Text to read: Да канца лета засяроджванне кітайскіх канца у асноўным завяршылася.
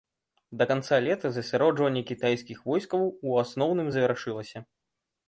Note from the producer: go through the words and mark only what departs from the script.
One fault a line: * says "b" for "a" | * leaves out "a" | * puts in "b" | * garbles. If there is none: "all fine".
* says "войскаў" for "канца"